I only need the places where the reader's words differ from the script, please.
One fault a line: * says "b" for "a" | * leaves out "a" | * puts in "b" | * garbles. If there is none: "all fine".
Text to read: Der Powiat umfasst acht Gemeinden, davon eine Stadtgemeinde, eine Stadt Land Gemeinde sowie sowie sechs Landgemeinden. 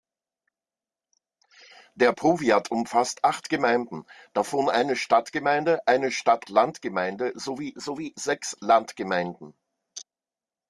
all fine